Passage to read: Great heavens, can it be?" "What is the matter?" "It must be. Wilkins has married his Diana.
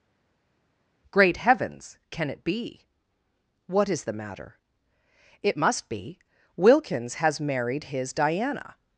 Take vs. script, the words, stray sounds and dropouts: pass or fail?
pass